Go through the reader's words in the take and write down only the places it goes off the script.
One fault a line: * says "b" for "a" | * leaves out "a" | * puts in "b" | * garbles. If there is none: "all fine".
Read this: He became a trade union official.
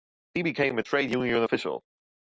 all fine